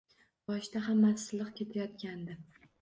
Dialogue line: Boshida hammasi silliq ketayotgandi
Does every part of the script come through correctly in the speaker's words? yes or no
yes